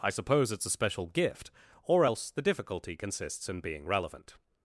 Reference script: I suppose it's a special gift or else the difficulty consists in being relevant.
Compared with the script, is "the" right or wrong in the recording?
right